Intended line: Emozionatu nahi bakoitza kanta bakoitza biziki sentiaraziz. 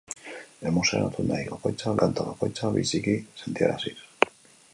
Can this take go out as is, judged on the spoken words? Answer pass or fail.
pass